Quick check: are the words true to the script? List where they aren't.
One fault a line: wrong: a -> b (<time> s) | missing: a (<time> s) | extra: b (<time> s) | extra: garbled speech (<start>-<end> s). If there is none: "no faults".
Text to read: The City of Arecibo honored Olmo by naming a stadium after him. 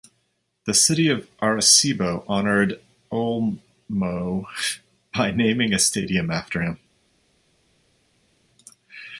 no faults